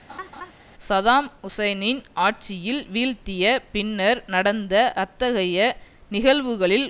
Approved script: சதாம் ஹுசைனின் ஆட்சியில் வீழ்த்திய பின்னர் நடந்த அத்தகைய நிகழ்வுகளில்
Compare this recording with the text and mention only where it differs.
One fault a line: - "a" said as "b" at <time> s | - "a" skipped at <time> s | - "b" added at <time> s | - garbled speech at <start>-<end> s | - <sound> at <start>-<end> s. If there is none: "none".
- laugh at 0.1-0.5 s